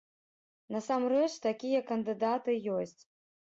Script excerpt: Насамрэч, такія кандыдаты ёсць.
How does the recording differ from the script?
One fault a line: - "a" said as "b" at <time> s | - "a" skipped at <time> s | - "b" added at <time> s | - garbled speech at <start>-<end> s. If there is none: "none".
none